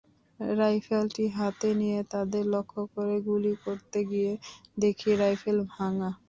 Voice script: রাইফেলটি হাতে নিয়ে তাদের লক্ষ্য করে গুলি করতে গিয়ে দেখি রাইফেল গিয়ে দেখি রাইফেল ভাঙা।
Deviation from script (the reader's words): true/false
true